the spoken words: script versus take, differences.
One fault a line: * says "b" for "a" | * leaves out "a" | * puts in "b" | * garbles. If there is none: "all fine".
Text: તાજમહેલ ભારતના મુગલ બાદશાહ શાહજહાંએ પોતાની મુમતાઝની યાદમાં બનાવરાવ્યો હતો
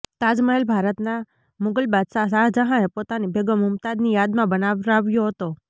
* puts in "બેગમ"